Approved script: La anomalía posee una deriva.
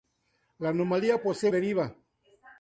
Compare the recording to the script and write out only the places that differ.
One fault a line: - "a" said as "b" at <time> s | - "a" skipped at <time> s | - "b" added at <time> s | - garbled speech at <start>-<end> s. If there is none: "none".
- "una" skipped at 1.5 s